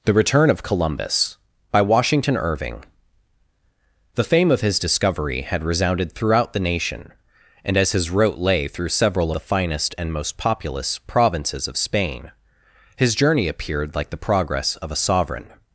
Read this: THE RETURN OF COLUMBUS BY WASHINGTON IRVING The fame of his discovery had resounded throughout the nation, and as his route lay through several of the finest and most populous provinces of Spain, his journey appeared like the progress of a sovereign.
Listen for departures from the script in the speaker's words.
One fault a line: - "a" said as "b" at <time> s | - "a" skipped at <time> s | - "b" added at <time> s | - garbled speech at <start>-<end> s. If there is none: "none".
- "of" skipped at 9.3 s